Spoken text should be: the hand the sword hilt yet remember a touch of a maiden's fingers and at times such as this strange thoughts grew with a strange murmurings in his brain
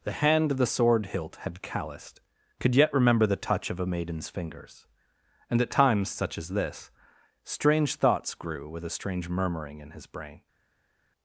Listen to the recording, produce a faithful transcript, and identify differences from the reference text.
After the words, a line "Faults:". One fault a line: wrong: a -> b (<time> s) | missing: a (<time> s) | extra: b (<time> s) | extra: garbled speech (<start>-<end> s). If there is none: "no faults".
the hand the sword hilt had calloused could yet remember the touch of a maiden's fingers and at times such as this strange thoughts grew with a strange murmuring in his brain
Faults:
extra: had calloused could (1.4 s)
wrong: a -> the (3.2 s)
wrong: murmurings -> murmuring (9.3 s)